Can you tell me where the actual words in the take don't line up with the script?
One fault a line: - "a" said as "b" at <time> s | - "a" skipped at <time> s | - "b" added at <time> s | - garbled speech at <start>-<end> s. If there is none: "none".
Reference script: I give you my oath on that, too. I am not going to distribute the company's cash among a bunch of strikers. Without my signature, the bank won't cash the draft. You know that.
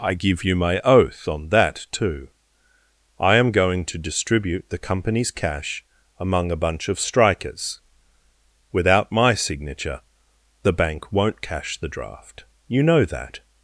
- "not" skipped at 3.5 s